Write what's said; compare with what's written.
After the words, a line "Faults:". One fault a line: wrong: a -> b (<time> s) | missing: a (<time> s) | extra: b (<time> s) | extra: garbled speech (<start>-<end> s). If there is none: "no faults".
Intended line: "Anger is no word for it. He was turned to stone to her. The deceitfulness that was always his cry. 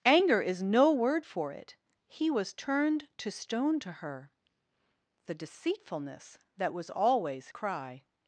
"Anger is no word for it. He was turned to stone to her. The deceitfulness that was always cry.
Faults:
missing: his (7.5 s)